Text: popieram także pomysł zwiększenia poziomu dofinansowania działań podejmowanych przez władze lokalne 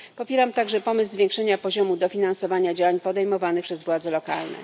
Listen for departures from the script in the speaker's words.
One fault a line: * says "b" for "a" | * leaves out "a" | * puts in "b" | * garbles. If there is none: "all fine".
all fine